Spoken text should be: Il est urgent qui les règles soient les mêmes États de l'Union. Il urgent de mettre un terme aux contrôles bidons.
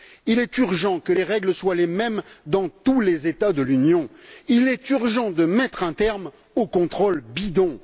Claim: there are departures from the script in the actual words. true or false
true